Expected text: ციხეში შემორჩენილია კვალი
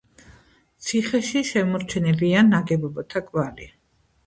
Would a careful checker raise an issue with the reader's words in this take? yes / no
yes